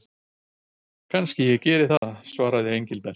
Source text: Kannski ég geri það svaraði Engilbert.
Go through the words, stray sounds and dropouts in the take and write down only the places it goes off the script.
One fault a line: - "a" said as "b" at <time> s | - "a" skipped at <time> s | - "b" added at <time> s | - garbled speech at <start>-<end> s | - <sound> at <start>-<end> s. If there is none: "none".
- dropout at 2.0-2.0 s